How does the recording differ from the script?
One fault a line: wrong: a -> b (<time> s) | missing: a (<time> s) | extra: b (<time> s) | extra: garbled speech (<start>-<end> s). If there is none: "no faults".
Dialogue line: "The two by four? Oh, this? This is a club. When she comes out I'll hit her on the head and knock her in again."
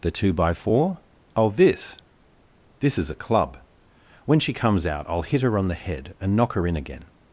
no faults